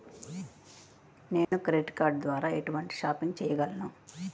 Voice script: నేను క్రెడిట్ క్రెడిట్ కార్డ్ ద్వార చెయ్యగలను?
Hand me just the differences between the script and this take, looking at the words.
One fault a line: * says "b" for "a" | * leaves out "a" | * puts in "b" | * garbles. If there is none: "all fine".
* leaves out "క్రెడిట్"
* puts in "ఎటువంటి షాపింగ్"